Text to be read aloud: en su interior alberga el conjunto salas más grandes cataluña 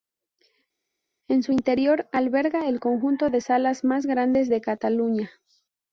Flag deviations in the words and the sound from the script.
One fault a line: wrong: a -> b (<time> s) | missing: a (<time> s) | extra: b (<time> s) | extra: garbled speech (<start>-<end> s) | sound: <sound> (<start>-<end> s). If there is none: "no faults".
extra: de (3.3 s)
extra: de (4.5 s)